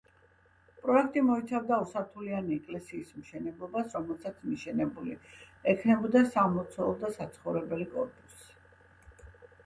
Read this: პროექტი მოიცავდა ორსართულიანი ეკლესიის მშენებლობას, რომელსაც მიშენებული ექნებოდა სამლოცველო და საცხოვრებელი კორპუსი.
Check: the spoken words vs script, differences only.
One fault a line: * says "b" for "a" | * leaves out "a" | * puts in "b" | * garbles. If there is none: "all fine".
all fine